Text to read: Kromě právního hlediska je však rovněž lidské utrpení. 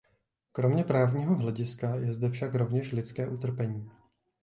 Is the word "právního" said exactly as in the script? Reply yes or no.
yes